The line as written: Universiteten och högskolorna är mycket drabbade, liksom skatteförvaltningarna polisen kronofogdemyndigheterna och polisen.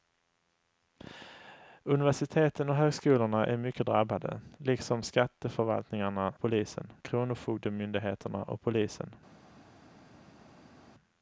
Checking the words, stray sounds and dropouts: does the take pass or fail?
pass